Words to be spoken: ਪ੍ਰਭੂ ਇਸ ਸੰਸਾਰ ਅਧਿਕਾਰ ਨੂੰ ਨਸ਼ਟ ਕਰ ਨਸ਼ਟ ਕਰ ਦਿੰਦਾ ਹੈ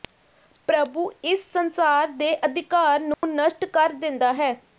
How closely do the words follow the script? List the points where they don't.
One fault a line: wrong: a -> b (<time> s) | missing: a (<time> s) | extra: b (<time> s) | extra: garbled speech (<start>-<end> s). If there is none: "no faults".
extra: ਦੇ (2.1 s)
missing: ਨਸ਼ਟ ਕਰ (3.9 s)